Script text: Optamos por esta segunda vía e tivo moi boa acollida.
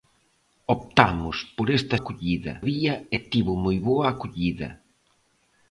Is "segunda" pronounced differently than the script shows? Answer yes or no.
yes